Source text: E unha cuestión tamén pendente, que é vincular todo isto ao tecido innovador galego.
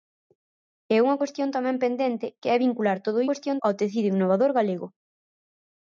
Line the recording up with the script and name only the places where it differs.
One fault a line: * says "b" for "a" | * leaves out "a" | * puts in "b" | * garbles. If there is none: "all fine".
* says "cuestión" for "isto"